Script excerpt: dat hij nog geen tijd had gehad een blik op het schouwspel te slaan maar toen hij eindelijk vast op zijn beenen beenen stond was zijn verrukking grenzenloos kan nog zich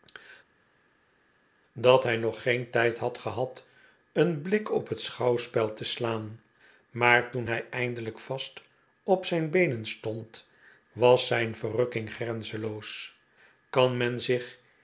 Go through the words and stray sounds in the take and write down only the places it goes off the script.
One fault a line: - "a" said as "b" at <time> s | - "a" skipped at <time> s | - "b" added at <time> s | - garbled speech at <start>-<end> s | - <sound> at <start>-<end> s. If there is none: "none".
- "beenen" skipped at 9.9 s
- "nog" said as "men" at 14.0 s